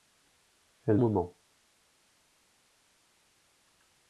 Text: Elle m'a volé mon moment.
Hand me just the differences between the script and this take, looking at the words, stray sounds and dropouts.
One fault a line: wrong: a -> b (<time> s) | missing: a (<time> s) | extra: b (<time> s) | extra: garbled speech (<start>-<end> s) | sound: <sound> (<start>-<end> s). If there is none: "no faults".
missing: m'a volé mon (1.0 s)